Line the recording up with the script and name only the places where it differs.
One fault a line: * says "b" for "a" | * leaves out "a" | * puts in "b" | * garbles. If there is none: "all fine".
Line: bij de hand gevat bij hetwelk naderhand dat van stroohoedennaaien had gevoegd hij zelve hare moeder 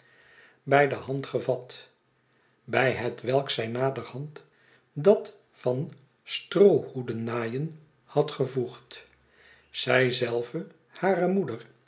* puts in "zij"
* says "zij" for "hij"